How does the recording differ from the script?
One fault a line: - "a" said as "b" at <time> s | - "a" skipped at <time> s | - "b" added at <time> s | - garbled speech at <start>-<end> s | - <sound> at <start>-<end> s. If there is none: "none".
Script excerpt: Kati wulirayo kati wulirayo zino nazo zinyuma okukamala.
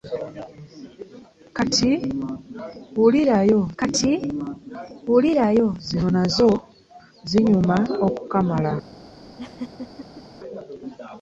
- laugh at 9.4-10.2 s